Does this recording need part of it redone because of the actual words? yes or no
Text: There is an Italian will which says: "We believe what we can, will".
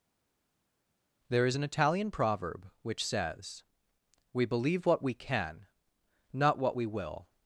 yes